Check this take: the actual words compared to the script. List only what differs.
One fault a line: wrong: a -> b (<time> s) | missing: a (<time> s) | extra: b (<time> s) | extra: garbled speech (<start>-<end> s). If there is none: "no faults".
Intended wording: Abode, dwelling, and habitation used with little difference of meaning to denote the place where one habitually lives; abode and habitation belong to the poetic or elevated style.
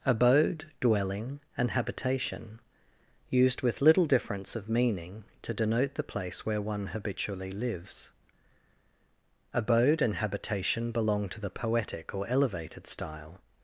no faults